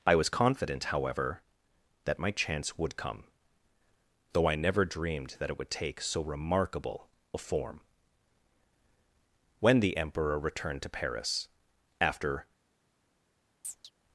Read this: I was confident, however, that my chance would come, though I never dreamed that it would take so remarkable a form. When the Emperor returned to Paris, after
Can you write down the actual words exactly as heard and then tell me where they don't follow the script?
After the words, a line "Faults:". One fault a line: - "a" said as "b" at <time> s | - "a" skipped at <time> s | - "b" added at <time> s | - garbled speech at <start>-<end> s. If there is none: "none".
I was confident, however, that my chance would come, though I never dreamed that it would take so remarkable a form. When the Emperor returned to Paris, after
Faults:
none